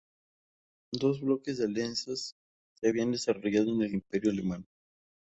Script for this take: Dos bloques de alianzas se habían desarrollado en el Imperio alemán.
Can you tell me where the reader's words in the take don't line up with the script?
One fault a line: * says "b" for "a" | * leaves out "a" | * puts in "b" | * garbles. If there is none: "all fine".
all fine